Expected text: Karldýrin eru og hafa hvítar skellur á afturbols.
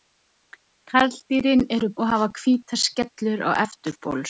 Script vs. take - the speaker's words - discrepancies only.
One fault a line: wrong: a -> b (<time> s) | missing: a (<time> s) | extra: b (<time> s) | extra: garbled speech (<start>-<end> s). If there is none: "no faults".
no faults